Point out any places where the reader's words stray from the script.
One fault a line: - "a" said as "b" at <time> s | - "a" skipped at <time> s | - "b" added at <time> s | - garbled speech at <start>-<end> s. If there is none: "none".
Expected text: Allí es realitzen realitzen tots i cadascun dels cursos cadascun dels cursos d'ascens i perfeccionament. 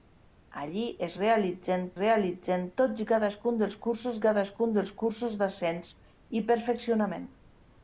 none